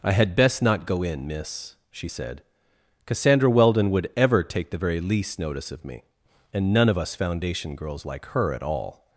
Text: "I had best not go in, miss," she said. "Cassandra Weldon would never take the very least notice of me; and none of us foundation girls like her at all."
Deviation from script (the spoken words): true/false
true